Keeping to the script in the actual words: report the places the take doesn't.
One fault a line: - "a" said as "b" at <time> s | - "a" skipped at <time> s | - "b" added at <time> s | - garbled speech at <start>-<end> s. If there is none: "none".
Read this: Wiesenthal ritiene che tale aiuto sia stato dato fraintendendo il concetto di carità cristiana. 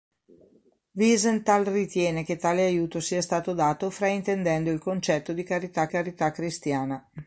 - "carità" added at 5.9 s